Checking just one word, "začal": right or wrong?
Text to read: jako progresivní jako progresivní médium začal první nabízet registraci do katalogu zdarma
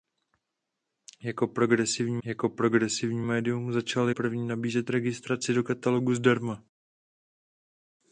right